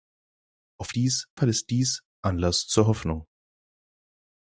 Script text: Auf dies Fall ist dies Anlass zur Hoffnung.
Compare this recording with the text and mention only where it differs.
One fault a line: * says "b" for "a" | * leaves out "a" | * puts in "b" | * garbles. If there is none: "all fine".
all fine